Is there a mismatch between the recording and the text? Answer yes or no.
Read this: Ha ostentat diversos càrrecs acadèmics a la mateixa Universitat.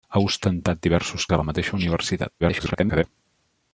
yes